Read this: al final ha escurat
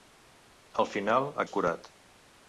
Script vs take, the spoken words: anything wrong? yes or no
no